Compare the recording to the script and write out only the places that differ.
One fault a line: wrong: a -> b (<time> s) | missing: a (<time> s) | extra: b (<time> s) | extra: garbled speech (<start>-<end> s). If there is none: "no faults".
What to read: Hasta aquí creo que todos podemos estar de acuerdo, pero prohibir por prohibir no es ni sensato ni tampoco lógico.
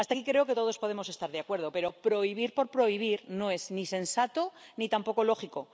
no faults